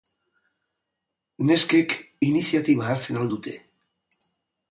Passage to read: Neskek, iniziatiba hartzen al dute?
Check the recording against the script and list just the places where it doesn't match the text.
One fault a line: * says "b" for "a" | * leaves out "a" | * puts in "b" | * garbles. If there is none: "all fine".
all fine